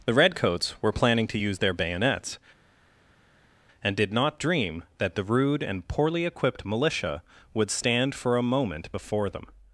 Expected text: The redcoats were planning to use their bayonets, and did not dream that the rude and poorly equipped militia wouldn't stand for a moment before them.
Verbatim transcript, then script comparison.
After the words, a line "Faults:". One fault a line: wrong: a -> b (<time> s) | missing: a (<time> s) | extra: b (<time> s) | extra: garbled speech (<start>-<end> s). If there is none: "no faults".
The redcoats were planning to use their bayonets, and did not dream that the rude and poorly equipped militia would stand for a moment before them.
Faults:
wrong: wouldn't -> would (7.5 s)